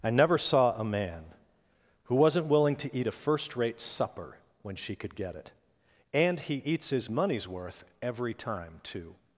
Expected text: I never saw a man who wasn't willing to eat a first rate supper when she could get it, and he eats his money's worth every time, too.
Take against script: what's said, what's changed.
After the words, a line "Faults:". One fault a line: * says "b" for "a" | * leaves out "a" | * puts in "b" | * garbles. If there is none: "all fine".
I never saw a man who wasn't willing to eat a first rate supper when she could get it, and he eats his money's worth every time, too.
Faults:
all fine